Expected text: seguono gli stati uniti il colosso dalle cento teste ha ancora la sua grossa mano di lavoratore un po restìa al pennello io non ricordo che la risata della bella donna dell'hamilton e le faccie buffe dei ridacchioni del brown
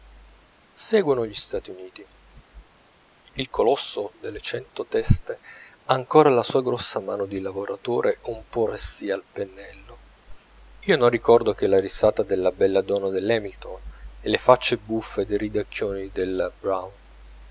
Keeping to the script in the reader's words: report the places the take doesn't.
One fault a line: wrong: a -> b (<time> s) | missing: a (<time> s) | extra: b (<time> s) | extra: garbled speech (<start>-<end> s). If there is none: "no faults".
no faults